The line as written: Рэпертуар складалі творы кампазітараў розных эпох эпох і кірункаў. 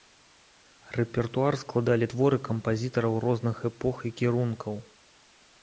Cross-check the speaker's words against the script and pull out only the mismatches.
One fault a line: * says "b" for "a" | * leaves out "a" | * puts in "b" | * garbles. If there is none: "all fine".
* leaves out "эпох"